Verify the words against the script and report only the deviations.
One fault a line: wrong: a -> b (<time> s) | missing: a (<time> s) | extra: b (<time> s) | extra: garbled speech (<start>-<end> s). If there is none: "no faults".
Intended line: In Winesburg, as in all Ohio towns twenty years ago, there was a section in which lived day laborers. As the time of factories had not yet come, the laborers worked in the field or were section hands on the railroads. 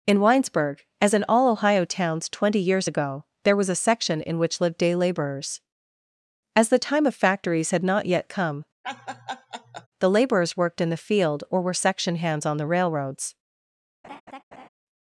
no faults